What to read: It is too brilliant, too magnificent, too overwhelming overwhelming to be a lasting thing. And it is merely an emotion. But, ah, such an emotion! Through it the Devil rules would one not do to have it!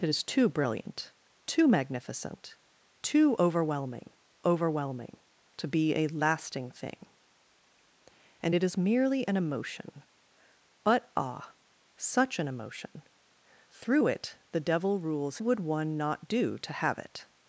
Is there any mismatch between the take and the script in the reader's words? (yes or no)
no